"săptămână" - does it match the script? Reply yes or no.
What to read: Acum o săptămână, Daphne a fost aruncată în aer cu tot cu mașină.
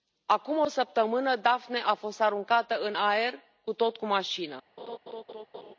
yes